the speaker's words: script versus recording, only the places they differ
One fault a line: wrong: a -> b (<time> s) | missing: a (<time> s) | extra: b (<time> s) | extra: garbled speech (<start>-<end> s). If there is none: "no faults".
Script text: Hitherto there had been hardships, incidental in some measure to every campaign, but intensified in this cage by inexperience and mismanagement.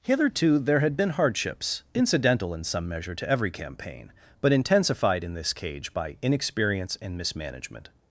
no faults